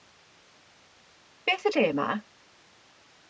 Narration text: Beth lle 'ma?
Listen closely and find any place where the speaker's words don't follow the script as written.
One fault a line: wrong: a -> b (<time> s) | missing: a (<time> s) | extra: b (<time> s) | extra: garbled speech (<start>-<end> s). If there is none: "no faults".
no faults